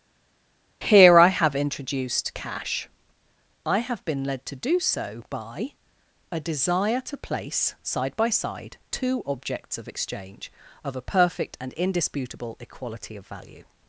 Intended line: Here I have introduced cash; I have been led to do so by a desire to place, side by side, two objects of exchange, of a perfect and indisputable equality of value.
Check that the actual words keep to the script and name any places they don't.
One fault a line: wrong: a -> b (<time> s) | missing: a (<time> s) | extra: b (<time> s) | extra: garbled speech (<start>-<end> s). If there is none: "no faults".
no faults